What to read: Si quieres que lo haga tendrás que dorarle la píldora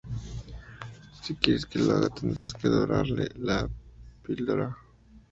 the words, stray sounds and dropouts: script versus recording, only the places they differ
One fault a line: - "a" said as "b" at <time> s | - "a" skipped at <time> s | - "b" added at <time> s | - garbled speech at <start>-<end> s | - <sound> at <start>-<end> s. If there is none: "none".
- dropout at 2.4-2.5 s